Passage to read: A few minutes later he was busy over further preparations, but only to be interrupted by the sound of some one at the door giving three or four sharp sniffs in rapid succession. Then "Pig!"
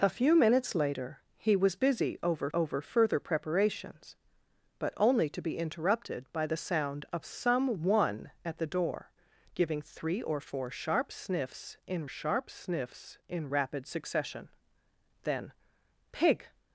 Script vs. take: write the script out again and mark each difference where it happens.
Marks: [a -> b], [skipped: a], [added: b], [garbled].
A few minutes later he was busy over [added: over] further preparations, but only to be interrupted by the sound of some one at the door giving three or four sharp sniffs in [added: sharp sniffs in] rapid succession. Then "Pig!"